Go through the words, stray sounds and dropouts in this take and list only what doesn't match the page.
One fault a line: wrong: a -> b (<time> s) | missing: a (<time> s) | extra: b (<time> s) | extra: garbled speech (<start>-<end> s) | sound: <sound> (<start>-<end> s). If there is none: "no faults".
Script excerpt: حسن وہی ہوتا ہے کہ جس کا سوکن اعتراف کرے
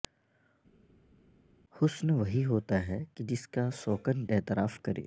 no faults